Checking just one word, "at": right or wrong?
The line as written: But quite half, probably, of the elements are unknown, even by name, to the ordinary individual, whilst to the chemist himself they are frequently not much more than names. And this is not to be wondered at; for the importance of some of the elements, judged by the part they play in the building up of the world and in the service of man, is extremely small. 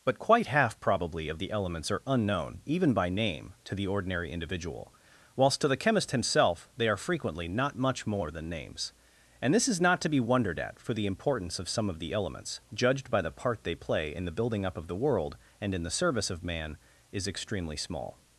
right